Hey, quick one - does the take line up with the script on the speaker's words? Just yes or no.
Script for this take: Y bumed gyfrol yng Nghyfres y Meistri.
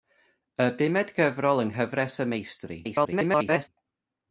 no